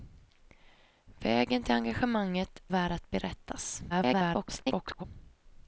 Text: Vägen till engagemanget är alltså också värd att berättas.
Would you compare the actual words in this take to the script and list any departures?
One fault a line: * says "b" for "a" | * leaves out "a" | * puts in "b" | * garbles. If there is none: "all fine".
* leaves out "är alltså också"
* garbles